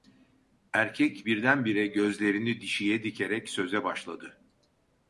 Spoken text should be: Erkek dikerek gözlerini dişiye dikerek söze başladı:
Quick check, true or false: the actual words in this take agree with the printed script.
false